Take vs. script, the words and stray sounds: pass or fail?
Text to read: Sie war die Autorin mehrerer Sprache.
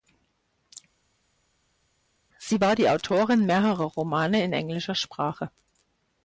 fail